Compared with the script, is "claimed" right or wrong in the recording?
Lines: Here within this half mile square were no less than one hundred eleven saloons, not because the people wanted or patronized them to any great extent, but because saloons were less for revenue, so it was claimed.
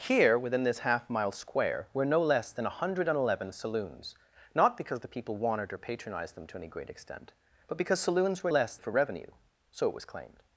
right